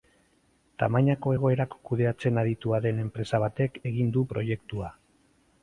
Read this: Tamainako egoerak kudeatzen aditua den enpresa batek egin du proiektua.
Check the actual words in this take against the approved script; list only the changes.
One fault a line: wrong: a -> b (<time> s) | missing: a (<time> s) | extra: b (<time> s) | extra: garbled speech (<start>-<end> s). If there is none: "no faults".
no faults